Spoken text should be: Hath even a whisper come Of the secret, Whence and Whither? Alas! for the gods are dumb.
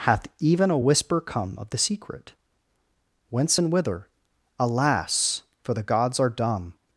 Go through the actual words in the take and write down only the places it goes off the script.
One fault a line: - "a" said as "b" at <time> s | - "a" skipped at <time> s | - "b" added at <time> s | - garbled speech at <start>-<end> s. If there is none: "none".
none